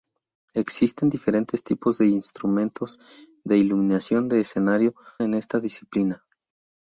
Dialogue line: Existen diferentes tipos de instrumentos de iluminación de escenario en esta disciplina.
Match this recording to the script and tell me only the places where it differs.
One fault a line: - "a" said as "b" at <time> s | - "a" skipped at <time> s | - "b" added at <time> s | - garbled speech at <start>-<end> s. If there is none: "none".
none